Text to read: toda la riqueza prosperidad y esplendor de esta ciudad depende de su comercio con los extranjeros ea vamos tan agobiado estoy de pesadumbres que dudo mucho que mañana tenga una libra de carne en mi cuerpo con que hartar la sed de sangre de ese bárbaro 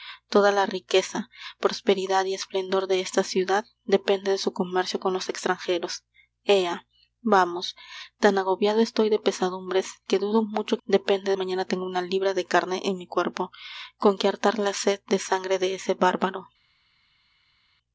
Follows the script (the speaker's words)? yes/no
no